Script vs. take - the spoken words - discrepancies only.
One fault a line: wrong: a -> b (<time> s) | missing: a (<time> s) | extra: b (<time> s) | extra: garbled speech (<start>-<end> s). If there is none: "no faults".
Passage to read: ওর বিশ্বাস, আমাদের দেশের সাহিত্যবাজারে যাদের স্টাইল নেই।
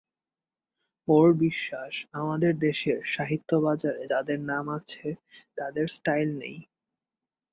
extra: নাম আছে তাদের (4.5 s)